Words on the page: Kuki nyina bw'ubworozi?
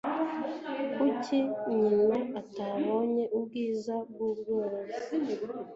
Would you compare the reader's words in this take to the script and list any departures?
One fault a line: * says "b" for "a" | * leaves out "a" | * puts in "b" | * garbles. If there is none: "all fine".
* puts in "atabonye ubwiza"